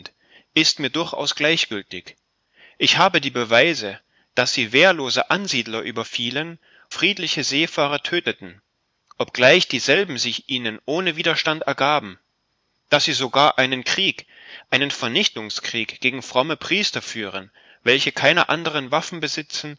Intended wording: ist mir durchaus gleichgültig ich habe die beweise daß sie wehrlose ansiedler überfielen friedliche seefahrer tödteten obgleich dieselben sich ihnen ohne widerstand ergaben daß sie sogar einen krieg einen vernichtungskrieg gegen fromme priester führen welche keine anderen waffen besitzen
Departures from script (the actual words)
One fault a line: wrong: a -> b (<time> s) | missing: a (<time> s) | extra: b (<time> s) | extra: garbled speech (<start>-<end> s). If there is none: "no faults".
no faults